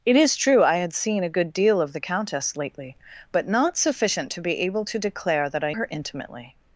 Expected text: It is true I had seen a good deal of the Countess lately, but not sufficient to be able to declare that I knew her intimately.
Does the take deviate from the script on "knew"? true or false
true